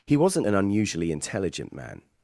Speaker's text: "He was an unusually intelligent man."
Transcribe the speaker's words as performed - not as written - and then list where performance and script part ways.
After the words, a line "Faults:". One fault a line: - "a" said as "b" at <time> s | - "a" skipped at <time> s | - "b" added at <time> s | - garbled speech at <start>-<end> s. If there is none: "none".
"He wasn't an unusually intelligent man."
Faults:
- "was" said as "wasn't" at 0.2 s